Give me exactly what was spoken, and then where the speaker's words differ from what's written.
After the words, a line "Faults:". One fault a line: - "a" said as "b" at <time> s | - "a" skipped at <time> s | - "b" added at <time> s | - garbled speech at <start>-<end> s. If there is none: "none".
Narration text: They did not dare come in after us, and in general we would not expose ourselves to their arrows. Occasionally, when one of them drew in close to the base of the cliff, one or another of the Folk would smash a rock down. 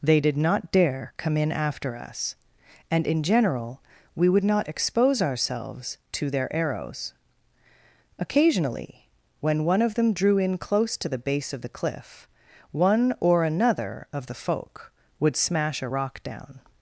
They did not dare come in after us, and in general we would not expose ourselves to their arrows. Occasionally, when one of them drew in close to the base of the cliff, one or another of the Folk would smash a rock down.
Faults:
none